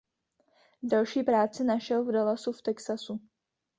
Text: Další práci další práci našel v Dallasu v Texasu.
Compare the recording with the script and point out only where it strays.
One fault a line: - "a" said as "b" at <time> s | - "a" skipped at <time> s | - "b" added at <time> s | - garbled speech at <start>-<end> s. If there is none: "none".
- "další práci" skipped at 1.6 s